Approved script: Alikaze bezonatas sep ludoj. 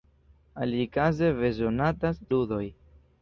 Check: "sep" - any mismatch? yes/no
yes